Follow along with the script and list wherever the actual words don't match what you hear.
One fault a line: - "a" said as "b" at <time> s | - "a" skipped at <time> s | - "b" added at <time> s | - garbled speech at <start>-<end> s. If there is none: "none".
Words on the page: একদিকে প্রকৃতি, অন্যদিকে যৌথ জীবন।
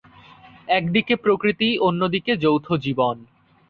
none